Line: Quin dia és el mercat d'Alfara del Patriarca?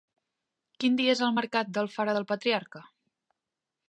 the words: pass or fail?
pass